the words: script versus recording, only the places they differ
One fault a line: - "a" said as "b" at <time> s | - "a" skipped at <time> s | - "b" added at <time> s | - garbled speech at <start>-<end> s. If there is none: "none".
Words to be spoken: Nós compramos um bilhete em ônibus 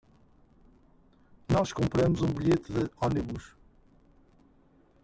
- "em" said as "de" at 2.7 s